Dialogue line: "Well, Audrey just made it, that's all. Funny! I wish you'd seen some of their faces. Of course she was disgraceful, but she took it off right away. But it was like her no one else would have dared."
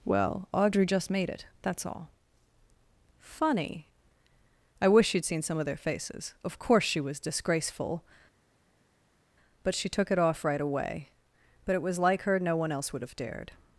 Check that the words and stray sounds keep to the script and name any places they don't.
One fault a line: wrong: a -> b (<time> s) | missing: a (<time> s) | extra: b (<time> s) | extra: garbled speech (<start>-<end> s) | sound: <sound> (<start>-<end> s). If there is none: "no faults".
no faults